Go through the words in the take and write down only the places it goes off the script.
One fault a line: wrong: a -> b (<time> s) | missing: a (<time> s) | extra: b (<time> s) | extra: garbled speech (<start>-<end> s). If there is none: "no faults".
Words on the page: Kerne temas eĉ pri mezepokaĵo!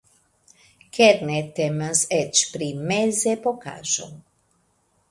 no faults